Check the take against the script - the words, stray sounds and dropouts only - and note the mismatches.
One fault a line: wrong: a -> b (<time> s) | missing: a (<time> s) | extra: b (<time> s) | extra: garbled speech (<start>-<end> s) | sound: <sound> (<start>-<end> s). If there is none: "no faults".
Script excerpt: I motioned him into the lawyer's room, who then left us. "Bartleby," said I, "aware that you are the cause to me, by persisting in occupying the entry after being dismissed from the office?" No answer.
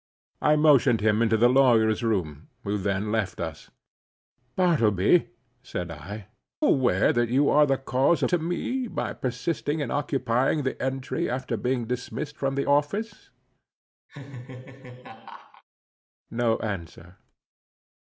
sound: laugh (14.1-15.6 s)